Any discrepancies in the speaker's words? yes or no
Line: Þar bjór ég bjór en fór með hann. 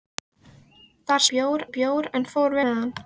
no